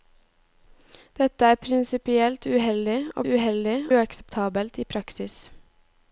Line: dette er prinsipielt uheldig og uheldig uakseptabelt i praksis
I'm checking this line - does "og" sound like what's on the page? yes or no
yes